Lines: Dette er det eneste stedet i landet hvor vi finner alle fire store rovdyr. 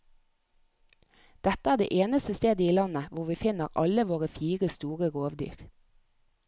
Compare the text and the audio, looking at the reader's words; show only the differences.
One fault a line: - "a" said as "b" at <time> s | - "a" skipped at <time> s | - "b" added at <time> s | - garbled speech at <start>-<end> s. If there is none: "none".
- "våre" added at 4.1 s